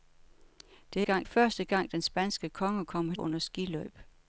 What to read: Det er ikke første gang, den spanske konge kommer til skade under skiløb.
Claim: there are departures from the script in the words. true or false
true